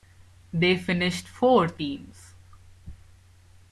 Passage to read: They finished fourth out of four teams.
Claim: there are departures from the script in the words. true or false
true